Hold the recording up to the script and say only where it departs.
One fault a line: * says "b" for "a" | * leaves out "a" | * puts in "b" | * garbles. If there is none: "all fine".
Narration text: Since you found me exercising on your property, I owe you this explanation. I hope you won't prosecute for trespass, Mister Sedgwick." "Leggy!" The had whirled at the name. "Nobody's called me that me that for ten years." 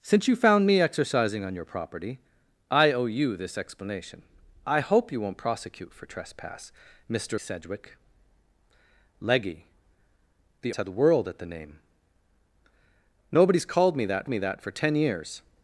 all fine